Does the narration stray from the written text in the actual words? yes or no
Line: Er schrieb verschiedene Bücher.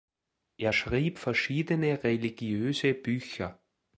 yes